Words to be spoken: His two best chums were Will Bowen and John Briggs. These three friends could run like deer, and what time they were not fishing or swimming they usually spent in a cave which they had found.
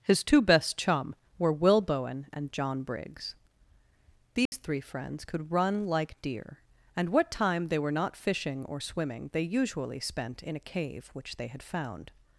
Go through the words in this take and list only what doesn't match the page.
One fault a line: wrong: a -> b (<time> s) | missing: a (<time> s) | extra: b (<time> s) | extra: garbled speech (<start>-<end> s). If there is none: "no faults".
wrong: chums -> chum (0.8 s)